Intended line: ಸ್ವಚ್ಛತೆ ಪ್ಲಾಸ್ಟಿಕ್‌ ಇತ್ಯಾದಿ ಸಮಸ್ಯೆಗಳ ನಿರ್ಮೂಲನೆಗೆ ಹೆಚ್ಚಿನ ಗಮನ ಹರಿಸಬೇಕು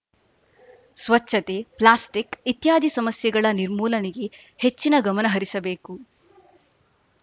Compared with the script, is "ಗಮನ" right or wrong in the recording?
right